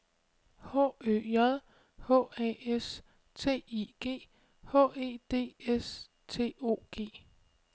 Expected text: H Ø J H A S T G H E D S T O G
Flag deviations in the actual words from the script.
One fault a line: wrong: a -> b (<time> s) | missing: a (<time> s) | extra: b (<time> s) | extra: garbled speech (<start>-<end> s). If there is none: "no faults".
extra: I (3.7 s)